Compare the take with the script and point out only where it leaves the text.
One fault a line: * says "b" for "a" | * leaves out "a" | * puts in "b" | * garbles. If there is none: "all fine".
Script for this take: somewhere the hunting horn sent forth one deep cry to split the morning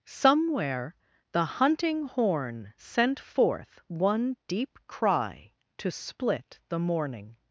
all fine